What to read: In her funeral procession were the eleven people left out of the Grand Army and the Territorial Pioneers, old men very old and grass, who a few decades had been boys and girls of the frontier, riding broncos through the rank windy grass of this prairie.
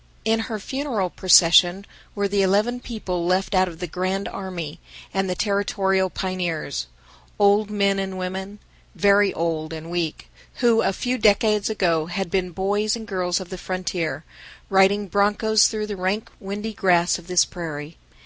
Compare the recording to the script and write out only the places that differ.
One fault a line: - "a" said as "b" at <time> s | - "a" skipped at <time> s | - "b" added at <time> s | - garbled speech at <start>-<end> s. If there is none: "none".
- "and women" added at 8.0 s
- "grass" said as "weak" at 9.9 s
- "ago" added at 11.7 s